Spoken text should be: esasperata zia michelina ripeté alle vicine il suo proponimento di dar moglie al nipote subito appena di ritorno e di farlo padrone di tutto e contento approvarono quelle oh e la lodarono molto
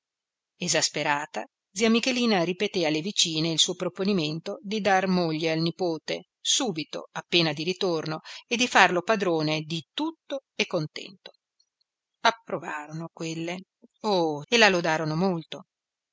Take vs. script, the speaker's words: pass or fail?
pass